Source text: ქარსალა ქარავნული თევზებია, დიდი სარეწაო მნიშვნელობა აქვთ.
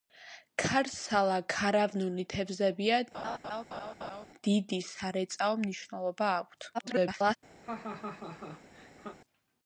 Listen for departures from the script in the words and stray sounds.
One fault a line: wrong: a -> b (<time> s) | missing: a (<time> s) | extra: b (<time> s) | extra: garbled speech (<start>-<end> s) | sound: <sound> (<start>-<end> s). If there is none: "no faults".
sound: laugh (3.1-4.3 s)
extra: garbled speech (6.7-7.4 s)
sound: laugh (7.6-9.2 s)